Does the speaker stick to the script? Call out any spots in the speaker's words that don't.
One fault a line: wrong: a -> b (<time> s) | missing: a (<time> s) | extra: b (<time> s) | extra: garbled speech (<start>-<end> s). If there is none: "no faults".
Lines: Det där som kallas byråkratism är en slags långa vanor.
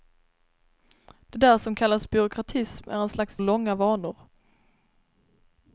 no faults